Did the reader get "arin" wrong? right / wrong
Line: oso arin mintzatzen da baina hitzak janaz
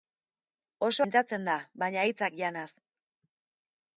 wrong